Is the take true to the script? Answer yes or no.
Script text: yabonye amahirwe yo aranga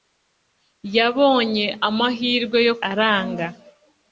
yes